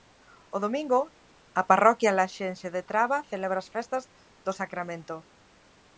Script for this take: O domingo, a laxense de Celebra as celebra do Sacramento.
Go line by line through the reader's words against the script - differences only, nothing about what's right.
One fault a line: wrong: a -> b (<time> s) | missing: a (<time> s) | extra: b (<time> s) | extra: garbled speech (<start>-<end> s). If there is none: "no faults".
extra: parroquia (1.7 s)
extra: Traba (2.9 s)
wrong: celebra -> festas (3.7 s)